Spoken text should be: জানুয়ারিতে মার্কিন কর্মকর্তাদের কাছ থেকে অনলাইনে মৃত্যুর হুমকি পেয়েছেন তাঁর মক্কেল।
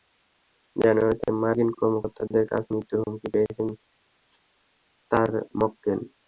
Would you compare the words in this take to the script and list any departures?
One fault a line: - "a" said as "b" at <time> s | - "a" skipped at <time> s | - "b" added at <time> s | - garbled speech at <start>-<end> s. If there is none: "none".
- "থেকে অনলাইনে" skipped at 2.6 s